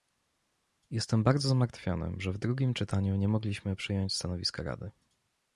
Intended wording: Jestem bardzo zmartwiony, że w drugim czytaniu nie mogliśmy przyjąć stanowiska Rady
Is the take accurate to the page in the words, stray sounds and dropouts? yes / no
yes